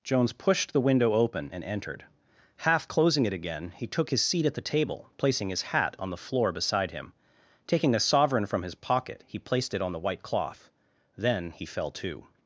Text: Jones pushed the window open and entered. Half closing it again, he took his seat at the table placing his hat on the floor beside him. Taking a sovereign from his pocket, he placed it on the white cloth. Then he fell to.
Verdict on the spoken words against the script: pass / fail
pass